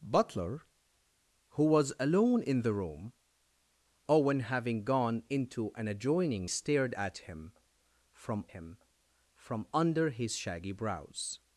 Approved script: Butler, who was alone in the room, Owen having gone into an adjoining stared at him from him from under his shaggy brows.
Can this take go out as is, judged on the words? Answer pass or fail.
pass